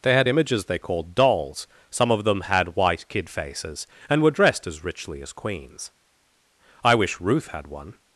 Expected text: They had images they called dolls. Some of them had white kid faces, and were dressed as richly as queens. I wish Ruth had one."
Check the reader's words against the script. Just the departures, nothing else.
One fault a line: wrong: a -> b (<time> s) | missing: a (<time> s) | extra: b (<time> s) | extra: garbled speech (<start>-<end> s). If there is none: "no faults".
no faults